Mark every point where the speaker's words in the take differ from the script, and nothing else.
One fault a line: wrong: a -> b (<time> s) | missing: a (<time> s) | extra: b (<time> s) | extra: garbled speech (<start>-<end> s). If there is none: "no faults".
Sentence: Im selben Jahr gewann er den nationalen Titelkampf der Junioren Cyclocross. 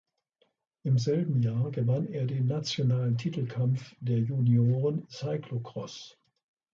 no faults